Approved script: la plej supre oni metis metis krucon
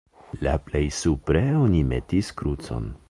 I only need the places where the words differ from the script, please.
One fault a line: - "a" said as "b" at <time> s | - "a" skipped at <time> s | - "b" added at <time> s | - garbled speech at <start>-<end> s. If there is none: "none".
- "metis" skipped at 2.3 s